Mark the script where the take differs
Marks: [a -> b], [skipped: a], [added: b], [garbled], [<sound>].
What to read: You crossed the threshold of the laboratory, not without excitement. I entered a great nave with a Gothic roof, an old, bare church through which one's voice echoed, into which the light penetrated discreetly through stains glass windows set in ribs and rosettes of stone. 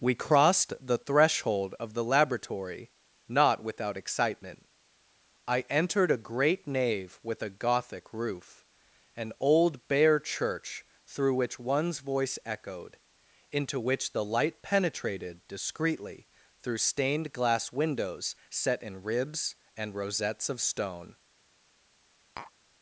[You -> We] crossed the threshold of the laboratory, not without excitement. I entered a great nave with a Gothic roof, an old, bare church through which one's voice echoed, into which the light penetrated discreetly through [stains -> stained] glass windows set in ribs and rosettes of stone. [tap]